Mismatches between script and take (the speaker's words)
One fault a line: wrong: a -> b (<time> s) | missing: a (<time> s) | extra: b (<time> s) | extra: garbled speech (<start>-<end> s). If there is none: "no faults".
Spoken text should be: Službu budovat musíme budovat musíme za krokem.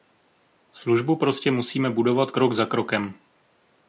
wrong: budovat -> prostě (1.1 s)
wrong: musíme -> krok (2.3 s)